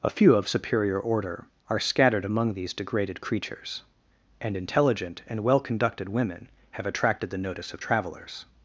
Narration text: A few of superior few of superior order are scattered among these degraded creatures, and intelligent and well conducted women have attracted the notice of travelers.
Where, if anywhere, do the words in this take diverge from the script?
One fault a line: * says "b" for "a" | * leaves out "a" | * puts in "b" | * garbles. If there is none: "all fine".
* leaves out "few of superior"